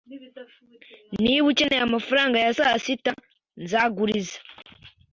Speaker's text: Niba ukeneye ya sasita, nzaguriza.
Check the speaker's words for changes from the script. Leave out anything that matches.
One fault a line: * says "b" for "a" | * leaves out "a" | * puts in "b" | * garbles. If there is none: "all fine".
* puts in "amafaranga"